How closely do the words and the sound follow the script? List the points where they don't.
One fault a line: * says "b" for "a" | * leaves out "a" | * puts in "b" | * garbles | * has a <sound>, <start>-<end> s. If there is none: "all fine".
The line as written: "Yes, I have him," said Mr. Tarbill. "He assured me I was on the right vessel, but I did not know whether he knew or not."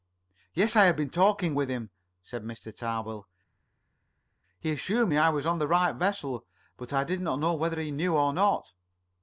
* puts in "been talking with"